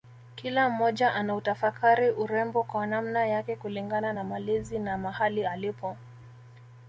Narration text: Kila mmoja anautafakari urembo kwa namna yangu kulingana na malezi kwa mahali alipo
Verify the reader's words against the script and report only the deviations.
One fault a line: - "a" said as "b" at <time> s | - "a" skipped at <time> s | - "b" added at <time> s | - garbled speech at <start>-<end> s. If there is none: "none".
- "yangu" said as "yake" at 3.2 s
- "kwa" said as "na" at 4.8 s